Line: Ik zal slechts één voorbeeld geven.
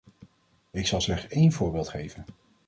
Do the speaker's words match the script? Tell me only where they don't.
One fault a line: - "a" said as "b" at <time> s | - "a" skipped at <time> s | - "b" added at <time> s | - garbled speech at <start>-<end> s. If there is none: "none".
none